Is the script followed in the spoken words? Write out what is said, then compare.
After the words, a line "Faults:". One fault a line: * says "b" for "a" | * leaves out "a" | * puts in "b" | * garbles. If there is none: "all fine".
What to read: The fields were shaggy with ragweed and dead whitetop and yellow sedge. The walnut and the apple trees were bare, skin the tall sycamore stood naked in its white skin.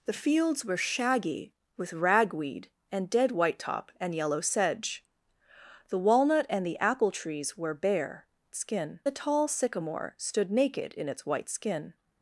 The fields were shaggy with ragweed and dead whitetop and yellow sedge. The walnut and the apple trees were bare, skin the tall sycamore stood naked in its white skin.
Faults:
all fine